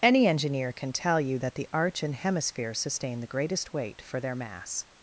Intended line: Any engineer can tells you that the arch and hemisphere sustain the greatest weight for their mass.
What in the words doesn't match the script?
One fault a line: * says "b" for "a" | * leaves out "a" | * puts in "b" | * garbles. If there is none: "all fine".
* says "tell" for "tells"